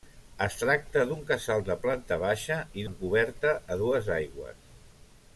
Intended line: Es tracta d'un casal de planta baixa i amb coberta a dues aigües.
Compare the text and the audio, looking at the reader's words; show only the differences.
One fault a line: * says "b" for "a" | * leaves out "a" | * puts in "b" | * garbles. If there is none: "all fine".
all fine